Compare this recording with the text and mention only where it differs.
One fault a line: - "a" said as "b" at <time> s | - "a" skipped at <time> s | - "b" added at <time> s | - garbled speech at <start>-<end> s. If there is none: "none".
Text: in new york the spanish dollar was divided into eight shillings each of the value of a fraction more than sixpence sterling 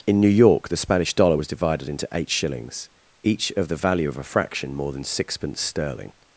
none